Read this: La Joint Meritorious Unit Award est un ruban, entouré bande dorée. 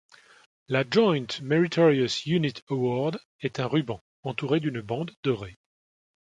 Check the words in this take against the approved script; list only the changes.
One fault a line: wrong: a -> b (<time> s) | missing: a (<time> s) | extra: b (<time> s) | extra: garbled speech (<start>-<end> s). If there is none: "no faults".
extra: d'une (4.6 s)